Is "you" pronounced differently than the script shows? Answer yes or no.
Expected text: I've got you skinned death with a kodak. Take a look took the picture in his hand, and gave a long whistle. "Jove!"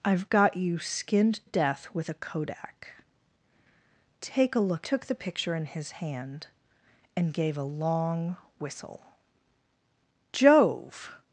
no